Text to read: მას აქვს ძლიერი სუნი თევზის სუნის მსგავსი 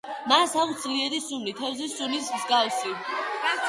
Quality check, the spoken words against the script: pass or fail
pass